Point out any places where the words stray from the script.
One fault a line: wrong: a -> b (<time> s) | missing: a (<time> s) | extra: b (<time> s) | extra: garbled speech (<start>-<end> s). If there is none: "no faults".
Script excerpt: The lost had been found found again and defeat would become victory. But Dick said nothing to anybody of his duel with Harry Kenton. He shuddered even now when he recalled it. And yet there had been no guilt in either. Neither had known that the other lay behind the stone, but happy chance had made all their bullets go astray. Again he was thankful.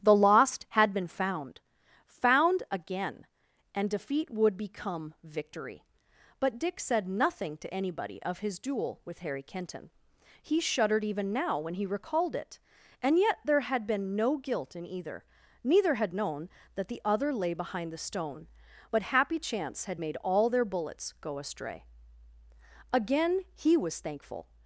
no faults